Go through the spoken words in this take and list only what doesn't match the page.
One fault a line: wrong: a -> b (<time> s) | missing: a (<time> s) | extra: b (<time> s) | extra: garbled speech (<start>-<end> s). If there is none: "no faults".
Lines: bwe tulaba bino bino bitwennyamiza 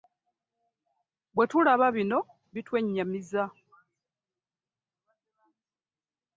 missing: bino (2.2 s)